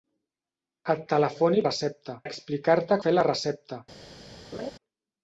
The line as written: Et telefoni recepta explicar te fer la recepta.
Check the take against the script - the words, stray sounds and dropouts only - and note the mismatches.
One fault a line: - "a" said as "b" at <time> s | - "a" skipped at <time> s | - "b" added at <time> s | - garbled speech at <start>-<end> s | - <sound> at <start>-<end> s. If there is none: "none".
- laugh at 4.5-4.7 s